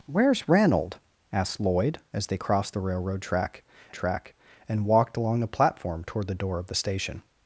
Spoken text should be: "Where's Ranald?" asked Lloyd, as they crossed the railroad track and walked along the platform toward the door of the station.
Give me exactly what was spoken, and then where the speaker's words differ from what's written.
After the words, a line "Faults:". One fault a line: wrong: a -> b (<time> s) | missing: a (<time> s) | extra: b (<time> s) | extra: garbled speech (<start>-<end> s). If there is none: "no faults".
"Where's Ranald?" asked Lloyd, as they crossed the railroad track track and walked along the platform toward the door of the station.
Faults:
extra: track (3.9 s)